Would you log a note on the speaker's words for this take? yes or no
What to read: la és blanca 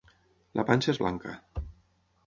yes